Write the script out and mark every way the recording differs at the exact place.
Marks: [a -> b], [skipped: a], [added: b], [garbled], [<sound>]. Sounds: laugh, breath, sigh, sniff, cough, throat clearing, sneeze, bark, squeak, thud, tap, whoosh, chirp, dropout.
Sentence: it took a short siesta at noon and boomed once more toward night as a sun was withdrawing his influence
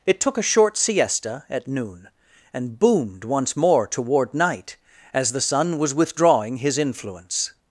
it took a short siesta at noon and boomed once more toward night as [a -> the] sun was withdrawing his influence